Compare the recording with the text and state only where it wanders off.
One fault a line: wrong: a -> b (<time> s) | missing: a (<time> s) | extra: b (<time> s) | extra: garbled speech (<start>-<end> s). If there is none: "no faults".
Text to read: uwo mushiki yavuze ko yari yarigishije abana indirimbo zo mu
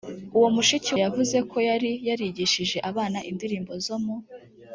no faults